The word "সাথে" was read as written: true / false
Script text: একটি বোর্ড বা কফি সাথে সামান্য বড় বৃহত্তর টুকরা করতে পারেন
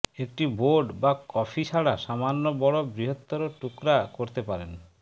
false